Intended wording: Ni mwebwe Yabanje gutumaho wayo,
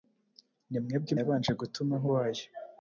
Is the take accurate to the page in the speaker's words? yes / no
yes